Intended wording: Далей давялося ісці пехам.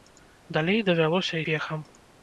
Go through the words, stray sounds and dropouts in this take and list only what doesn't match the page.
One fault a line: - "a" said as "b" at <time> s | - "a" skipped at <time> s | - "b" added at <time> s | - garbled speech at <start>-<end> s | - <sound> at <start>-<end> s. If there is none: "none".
- "ісці" skipped at 1.4 s